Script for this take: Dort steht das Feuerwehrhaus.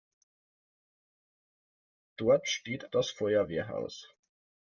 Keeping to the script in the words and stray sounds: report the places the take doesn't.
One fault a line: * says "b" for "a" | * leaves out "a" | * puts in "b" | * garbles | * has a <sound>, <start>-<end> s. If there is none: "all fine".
all fine